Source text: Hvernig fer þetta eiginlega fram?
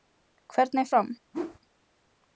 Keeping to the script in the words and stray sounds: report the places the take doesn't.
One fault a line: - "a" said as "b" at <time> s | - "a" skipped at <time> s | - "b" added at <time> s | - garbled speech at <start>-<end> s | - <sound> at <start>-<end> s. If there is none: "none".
- "fer þetta eiginlega" skipped at 0.8 s
- whoosh at 1.3-1.6 s